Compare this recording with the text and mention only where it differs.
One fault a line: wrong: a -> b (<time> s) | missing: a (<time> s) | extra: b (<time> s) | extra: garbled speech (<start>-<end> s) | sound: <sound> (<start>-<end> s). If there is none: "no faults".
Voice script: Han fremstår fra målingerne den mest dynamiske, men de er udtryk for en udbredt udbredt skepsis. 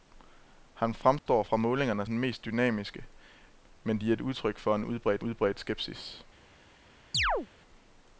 sound: dropout (1.2-1.3 s)
sound: chirp (7.1-7.5 s)